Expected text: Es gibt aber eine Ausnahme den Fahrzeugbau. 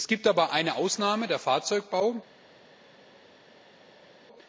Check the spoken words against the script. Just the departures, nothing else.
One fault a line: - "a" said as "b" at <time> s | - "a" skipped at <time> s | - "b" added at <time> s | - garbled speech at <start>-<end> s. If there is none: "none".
none